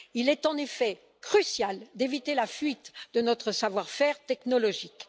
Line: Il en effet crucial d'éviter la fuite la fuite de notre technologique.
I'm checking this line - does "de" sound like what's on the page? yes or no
no